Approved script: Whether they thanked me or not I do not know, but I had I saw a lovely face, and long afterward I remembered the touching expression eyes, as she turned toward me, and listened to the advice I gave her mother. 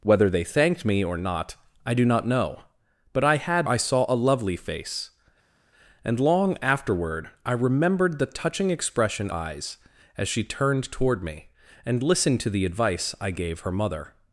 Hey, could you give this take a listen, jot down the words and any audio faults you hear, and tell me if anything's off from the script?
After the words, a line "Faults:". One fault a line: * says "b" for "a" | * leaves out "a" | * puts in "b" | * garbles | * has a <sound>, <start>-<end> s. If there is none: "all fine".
Whether they thanked me or not I do not know, but I had I saw a lovely face, and long afterward I remembered the touching expression eyes, as she turned toward me, and listened to the advice I gave her mother.
Faults:
all fine